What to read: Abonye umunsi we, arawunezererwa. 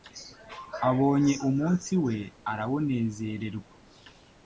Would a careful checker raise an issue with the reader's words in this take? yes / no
no